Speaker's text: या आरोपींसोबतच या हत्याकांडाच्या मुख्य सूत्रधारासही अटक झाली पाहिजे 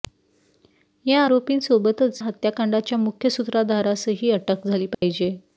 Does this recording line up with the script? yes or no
no